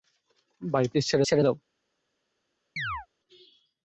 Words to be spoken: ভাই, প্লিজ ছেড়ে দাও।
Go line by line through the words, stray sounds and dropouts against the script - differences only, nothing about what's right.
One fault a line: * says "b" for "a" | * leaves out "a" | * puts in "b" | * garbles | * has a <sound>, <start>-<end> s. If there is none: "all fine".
* puts in "ছেড়ে"
* has a chirp, 2.8-3.1 s